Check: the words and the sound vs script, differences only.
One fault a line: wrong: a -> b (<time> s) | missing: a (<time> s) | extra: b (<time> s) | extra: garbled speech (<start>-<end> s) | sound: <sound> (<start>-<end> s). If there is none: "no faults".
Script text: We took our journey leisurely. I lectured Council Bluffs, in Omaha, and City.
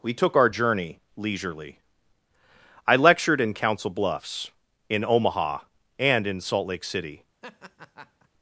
extra: in (3.4 s)
extra: in Salt Lake (6.3 s)
sound: laugh (7.4-8.3 s)